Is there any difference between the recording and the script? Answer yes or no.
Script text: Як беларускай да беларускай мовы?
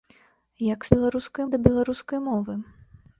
no